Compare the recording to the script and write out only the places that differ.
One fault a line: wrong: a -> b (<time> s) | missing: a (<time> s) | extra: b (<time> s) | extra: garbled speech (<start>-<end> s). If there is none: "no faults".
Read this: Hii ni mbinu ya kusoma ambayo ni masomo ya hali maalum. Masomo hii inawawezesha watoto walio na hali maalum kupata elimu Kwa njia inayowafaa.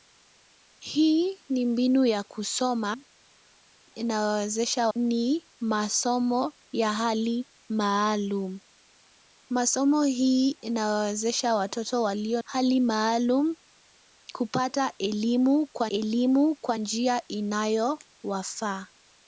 wrong: ambayo -> inawawezesha (3.8 s)
missing: na (12.4 s)
extra: elimu Kwa (15.9 s)